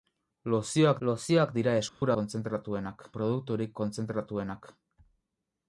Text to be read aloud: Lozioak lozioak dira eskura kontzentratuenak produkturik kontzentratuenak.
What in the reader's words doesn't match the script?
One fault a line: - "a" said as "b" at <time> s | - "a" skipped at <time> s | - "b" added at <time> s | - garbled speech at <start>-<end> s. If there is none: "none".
none